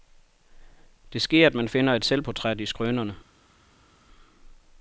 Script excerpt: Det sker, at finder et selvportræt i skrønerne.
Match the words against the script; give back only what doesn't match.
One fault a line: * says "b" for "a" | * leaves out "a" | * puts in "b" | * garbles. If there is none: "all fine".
* puts in "man"